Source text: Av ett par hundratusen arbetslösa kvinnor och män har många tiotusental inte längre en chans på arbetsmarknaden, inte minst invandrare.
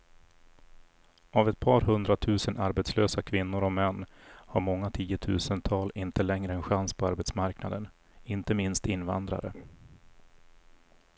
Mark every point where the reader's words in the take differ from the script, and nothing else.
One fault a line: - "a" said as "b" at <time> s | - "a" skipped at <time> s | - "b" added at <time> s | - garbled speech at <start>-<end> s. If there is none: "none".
none